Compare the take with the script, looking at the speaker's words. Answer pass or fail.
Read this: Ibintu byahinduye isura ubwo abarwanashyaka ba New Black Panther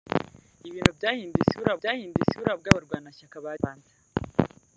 fail